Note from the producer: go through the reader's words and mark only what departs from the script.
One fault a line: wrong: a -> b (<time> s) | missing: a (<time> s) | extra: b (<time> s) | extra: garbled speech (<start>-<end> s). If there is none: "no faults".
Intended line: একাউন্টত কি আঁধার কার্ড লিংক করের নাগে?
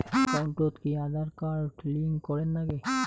no faults